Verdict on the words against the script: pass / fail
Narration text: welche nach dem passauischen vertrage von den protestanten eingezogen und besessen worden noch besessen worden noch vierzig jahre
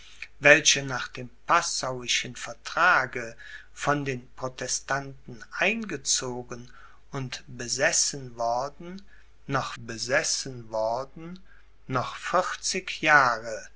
pass